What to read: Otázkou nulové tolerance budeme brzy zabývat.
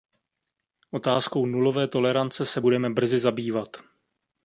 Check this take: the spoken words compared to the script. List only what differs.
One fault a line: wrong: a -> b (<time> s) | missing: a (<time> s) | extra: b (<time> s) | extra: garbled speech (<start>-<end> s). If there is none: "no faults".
extra: se (2.5 s)